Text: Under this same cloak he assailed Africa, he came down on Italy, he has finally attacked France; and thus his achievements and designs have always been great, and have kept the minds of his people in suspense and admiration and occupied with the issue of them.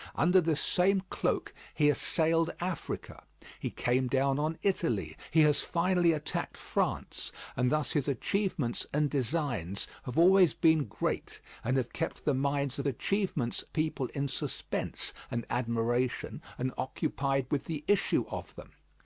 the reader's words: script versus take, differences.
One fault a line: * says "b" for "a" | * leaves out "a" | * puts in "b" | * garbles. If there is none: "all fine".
* says "achievements" for "his"